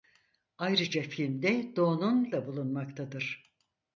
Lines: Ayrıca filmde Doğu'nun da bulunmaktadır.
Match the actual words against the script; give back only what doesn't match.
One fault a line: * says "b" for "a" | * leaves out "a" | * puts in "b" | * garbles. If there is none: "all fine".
all fine